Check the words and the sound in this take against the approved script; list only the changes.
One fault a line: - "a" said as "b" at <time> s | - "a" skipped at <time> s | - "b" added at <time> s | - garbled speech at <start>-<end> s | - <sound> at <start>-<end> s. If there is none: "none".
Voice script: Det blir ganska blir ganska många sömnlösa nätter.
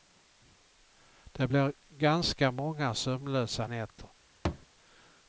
- "blir ganska" skipped at 2.5 s
- thud at 4.4-4.7 s